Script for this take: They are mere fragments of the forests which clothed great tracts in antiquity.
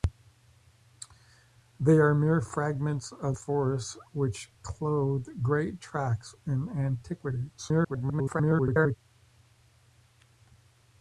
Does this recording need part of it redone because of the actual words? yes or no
yes